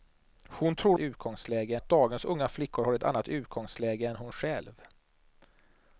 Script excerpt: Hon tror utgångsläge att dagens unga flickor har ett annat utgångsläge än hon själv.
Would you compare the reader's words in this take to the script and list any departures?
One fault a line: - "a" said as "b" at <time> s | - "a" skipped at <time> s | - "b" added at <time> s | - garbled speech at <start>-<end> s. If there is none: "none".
none